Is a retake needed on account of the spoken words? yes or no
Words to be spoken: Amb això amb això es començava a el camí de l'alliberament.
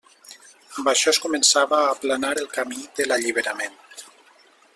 yes